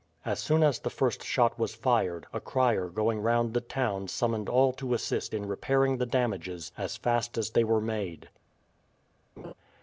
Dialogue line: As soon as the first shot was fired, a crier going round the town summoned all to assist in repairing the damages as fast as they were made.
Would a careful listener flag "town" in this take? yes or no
no